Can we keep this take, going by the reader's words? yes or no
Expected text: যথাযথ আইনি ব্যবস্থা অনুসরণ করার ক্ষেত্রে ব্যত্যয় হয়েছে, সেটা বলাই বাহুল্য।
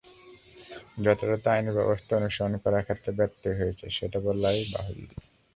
yes